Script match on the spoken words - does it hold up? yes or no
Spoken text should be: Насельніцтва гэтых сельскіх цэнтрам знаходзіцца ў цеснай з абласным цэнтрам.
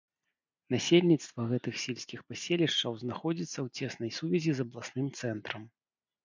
no